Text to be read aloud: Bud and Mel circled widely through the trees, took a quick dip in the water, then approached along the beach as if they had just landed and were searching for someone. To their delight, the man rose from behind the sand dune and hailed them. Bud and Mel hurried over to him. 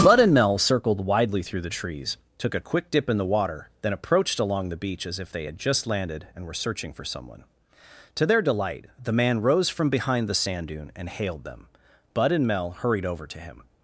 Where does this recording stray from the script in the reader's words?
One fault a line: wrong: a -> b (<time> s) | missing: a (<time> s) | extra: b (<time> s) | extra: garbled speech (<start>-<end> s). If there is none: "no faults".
no faults